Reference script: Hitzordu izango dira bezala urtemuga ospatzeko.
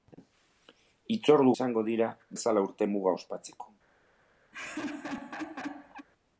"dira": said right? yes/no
yes